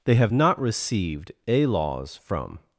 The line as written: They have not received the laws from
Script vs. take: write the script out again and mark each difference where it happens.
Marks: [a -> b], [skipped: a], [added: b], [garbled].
They have not received [the -> a] laws from